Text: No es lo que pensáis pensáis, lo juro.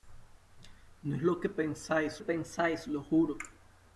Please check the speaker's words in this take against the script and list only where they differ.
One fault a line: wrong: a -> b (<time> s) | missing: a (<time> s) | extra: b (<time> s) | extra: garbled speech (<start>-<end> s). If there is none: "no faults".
no faults